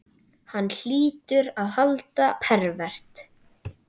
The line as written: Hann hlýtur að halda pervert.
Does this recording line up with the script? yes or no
yes